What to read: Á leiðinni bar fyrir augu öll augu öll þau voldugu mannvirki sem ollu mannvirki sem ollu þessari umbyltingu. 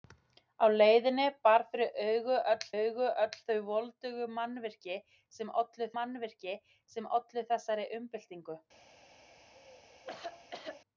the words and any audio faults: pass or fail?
fail